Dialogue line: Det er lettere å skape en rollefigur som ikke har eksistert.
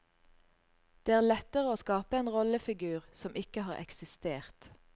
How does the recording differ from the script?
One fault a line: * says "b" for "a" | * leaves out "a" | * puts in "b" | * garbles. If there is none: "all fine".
all fine